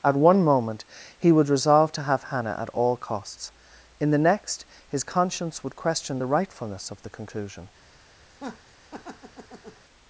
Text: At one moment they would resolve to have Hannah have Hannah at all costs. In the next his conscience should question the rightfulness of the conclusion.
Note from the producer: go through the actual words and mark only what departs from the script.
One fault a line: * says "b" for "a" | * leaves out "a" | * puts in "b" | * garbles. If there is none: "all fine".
* says "he" for "they"
* leaves out "have Hannah"
* says "would" for "should"